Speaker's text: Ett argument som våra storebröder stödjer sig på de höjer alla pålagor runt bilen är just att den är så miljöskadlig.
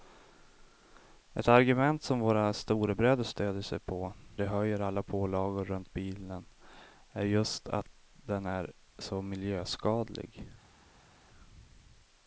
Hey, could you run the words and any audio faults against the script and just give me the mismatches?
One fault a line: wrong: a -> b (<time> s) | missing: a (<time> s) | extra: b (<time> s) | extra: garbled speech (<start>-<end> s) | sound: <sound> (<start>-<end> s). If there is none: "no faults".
no faults